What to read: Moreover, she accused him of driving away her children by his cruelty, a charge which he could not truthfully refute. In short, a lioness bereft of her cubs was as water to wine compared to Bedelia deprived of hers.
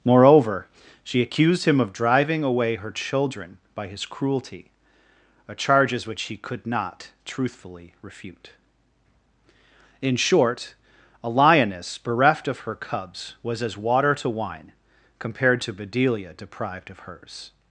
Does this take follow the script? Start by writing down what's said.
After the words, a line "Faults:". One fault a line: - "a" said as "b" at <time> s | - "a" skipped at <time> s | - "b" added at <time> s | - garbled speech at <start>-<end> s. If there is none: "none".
Moreover, she accused him of driving away her children by his cruelty, a charges which he could not truthfully refute. In short, a lioness bereft of her cubs was as water to wine compared to Bedelia deprived of hers.
Faults:
- "charge" said as "charges" at 5.5 s